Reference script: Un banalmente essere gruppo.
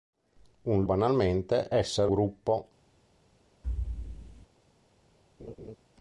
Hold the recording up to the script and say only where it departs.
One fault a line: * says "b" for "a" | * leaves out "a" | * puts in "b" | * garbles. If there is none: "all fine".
all fine